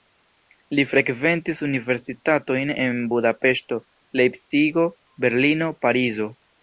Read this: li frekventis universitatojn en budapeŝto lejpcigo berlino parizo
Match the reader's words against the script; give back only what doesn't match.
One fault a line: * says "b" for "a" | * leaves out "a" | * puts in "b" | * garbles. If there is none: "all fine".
all fine